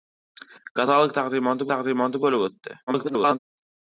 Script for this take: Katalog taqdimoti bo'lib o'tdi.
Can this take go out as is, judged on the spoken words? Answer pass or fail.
fail